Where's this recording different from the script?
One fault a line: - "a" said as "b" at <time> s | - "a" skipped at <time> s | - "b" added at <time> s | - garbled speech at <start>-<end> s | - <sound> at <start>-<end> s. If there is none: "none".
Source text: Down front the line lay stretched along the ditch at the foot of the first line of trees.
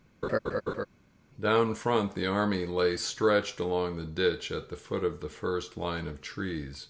- laugh at 0.2-0.9 s
- "line" said as "army" at 2.3 s